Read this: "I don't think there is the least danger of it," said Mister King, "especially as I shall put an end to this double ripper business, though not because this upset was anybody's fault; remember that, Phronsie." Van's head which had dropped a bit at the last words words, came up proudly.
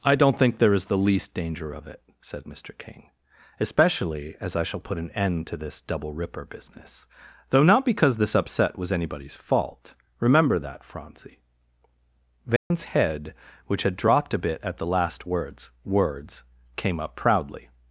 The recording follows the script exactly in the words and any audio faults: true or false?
false